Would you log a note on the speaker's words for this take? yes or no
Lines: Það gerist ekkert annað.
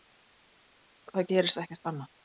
no